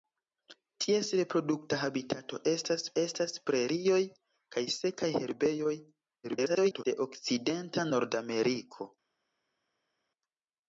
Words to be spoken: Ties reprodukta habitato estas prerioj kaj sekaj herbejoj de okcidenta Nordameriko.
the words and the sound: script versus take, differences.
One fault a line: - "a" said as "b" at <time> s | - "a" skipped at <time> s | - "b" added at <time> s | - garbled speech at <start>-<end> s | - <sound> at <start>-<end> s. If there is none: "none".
- "estas" added at 3.0 s
- garbled speech at 6.2-6.8 s